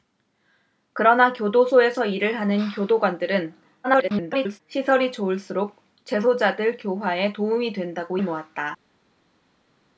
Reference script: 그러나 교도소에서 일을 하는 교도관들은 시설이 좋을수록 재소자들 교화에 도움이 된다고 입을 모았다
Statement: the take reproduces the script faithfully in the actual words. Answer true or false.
false